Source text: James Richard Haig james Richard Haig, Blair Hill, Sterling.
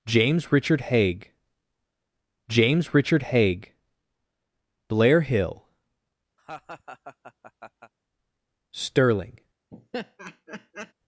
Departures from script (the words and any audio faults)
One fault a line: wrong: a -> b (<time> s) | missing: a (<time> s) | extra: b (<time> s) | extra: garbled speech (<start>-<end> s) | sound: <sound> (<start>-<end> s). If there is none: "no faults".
sound: laugh (6.4-7.9 s)
sound: laugh (9.7-10.9 s)